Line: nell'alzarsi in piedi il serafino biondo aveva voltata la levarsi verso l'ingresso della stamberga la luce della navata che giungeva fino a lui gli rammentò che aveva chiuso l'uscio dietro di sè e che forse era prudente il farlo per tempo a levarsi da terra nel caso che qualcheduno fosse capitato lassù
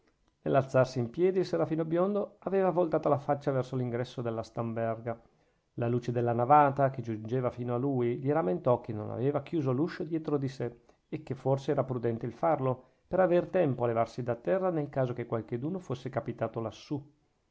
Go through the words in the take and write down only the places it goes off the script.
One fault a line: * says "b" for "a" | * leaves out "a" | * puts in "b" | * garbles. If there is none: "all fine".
* says "faccia" for "levarsi"
* puts in "non"
* puts in "aver"